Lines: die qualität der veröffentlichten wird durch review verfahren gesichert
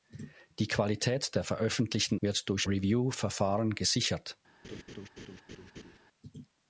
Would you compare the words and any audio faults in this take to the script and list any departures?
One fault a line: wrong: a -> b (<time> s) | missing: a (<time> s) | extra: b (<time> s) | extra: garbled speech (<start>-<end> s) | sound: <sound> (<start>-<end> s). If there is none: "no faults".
sound: laugh (4.6-6.0 s)